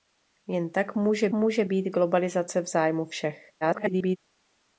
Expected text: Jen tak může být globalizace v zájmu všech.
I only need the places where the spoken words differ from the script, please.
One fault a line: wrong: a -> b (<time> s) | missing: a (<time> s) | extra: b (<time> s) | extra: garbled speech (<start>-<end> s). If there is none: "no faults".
extra: může (1.3 s)
extra: garbled speech (3.6-4.2 s)